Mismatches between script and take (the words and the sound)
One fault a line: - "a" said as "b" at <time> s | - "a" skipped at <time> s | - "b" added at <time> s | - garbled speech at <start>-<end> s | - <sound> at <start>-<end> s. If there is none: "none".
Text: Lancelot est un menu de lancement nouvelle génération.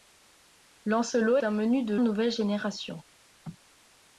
- "est" skipped at 1.4 s
- "lancement" skipped at 2.0 s